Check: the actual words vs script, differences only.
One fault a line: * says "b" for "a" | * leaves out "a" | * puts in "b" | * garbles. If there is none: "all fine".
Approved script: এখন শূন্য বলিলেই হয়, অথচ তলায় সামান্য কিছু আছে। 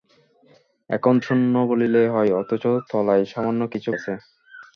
all fine